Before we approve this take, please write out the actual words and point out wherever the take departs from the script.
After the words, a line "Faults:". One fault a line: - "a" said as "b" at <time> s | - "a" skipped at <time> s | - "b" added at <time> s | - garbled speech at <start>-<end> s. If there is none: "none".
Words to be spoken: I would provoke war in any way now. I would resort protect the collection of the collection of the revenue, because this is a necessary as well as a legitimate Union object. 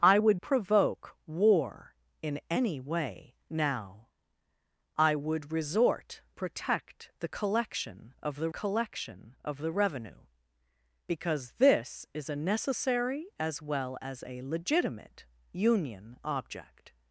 I would provoke war in any way now. I would resort protect the collection of the collection of the revenue, because this is a necessary as well as a legitimate Union object.
Faults:
none